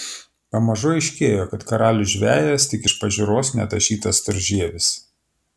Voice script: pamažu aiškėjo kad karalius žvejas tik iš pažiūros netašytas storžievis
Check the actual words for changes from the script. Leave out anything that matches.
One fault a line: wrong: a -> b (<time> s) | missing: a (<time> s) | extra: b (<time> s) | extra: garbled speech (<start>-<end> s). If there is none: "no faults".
no faults